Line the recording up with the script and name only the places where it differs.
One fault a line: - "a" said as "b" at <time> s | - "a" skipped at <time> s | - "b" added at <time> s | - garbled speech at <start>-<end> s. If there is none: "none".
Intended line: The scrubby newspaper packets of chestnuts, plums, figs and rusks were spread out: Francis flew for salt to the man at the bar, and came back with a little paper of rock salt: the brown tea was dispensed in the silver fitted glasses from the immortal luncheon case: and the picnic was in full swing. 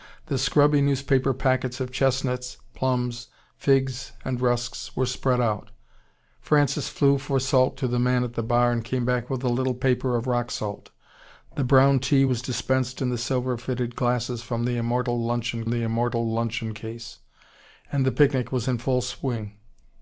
- "the immortal luncheon" added at 15.7 s